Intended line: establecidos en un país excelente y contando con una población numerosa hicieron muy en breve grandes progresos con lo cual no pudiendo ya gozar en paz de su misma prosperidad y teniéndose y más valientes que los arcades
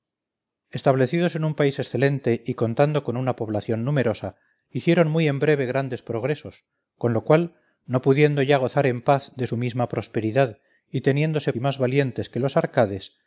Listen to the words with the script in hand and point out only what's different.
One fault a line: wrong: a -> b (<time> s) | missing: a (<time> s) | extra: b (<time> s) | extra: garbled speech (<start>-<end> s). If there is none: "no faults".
no faults